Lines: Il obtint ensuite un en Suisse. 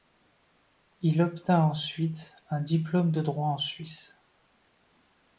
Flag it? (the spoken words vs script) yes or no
yes